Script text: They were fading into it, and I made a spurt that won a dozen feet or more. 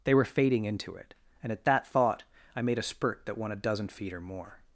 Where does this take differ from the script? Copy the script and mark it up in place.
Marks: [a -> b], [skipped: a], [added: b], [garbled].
They were fading into it, and [added: at that thought] I made a spurt that won a dozen feet or more.